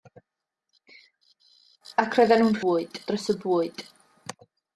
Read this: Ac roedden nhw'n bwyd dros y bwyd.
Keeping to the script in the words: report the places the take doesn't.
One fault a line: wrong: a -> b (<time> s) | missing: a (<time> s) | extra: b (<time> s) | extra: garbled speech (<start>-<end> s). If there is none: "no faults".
no faults